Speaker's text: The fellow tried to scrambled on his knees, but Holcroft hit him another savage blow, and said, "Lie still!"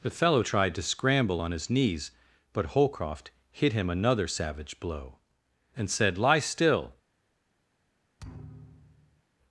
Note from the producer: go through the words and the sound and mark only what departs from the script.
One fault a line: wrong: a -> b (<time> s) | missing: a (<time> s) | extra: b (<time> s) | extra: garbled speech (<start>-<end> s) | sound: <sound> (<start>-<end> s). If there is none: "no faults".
wrong: scrambled -> scramble (0.8 s)
sound: thud (8.2-9.2 s)